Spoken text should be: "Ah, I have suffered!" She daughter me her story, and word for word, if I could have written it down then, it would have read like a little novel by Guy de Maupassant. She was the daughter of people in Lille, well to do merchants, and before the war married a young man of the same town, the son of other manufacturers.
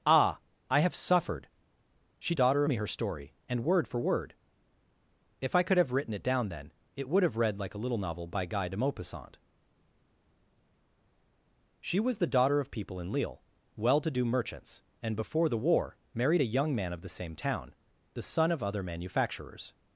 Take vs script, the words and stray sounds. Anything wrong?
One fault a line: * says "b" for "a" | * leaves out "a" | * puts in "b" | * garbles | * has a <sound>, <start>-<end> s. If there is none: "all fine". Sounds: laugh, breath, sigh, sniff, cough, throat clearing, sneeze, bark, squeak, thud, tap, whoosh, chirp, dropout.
all fine